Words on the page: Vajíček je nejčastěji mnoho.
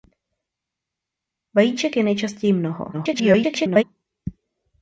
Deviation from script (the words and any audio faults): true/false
true